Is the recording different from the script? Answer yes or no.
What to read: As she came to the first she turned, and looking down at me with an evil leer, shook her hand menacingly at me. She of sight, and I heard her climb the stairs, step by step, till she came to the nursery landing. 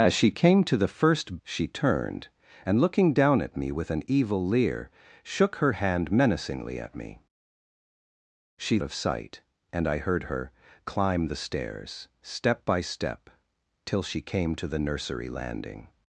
no